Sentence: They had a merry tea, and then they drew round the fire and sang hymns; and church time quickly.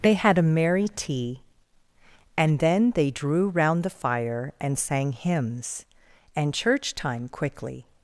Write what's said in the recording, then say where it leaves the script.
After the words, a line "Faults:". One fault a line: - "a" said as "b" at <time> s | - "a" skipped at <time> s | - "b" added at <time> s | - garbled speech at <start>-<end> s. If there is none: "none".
They had a merry tea, and then they drew round the fire and sang hymns; and church time quickly.
Faults:
none